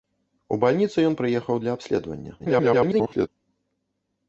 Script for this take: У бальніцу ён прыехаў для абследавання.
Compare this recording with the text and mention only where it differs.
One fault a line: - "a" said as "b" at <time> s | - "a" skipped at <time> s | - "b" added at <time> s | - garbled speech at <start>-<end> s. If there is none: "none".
- garbled speech at 2.4-3.3 s